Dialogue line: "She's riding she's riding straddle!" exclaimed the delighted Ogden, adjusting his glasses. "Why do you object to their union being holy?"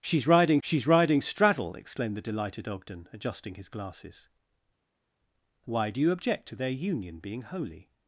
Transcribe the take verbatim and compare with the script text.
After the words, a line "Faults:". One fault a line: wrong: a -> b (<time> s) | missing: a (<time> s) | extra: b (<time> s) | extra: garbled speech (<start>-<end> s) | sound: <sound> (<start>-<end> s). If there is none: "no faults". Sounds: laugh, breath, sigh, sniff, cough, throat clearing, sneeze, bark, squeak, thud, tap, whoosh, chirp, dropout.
"She's riding she's riding straddle!" exclaimed the delighted Ogden, adjusting his glasses. "Why do you object to their union being holy?"
Faults:
no faults